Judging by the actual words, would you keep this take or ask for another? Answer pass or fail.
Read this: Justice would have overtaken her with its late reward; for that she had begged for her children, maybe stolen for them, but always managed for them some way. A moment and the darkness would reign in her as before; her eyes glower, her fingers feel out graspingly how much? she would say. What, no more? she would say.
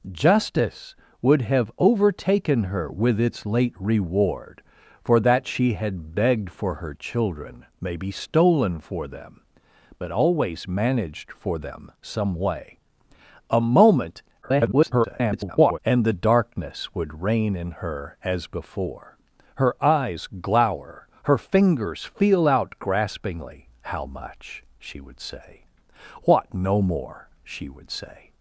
fail